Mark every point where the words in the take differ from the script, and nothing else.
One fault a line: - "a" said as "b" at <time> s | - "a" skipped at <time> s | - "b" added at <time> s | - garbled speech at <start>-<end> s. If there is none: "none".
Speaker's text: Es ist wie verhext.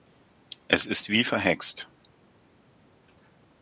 none